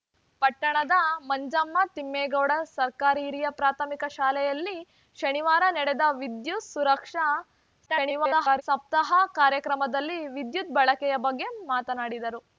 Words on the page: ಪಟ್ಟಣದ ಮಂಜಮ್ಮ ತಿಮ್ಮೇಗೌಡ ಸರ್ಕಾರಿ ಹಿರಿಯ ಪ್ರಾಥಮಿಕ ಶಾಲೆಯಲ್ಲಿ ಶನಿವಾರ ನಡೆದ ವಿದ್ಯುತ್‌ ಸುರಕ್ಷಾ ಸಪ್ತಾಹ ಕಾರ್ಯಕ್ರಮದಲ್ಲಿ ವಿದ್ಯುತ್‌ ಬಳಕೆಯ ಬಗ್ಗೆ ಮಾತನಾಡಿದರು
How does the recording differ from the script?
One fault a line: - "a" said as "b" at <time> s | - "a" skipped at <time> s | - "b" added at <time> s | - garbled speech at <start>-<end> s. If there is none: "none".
- garbled speech at 7.9-8.6 s